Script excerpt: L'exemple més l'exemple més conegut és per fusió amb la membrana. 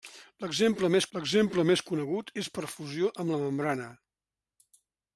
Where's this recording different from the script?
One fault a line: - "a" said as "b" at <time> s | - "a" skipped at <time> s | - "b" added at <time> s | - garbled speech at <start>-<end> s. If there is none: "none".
none